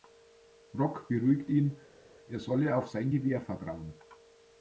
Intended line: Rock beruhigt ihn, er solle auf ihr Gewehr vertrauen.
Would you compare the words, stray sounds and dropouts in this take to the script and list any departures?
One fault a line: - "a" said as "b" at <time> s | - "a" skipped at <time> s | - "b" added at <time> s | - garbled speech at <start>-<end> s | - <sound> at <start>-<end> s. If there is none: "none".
- "ihr" said as "sein" at 2.9 s